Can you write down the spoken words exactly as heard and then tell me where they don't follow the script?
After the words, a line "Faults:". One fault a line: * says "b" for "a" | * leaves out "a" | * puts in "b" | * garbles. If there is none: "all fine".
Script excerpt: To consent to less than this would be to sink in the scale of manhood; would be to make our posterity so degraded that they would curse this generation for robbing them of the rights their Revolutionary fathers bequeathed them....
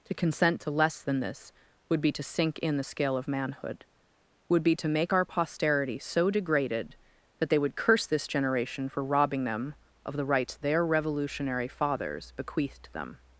To consent to less than this would be to sink in the scale of manhood; would be to make our posterity so degraded that they would curse this generation for robbing them of the rights their Revolutionary fathers bequeathed them....
Faults:
all fine